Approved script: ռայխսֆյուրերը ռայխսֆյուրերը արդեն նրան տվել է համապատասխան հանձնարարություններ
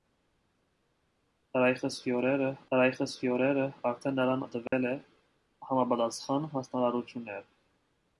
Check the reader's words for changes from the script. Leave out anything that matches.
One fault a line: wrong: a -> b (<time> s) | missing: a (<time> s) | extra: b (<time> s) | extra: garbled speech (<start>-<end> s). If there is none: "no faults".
no faults